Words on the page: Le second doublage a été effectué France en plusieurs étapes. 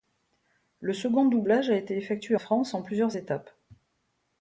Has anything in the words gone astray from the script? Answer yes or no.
no